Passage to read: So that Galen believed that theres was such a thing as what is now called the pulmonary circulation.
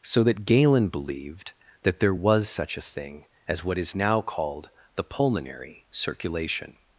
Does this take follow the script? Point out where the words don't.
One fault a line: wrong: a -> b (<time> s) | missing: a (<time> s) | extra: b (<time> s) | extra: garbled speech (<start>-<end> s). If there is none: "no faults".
wrong: theres -> there (2.0 s)